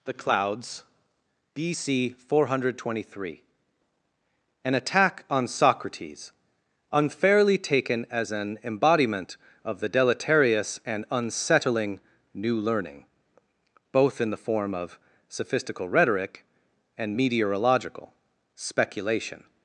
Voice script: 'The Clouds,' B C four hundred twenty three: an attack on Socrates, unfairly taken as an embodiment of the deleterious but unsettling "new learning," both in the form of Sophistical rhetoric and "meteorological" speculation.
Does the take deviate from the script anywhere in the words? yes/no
yes